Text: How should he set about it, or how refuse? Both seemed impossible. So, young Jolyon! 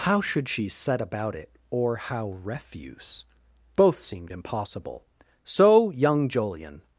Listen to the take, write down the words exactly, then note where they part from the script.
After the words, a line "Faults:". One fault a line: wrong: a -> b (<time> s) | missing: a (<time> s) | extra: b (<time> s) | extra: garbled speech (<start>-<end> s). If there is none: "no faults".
How should she set about it, or how refuse? Both seemed impossible. So, young Jolyon!
Faults:
wrong: he -> she (0.5 s)